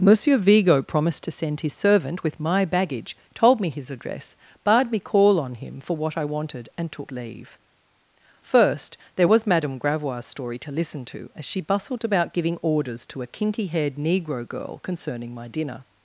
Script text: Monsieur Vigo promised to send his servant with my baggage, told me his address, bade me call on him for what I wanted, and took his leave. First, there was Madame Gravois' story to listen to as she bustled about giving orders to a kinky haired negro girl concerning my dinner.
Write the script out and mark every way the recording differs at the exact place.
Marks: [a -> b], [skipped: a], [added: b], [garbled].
Monsieur Vigo promised to send his servant with my baggage, told me his address, bade me call on him for what I wanted, and took [skipped: his] leave. First, there was Madame Gravois' story to listen to as she bustled about giving orders to a kinky haired negro girl concerning my dinner.